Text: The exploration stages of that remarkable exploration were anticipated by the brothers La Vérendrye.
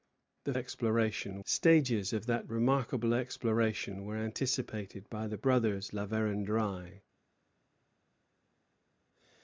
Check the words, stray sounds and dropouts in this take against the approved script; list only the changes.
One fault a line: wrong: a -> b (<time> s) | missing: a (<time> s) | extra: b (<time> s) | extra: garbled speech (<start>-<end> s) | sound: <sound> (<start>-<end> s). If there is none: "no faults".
no faults